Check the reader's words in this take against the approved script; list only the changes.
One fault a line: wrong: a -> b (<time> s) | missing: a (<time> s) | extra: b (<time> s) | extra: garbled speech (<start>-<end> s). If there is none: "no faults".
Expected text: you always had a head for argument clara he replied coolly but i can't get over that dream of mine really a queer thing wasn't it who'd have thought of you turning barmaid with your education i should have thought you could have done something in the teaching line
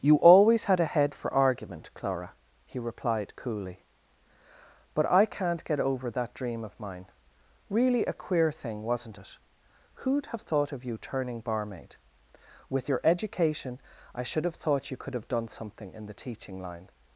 no faults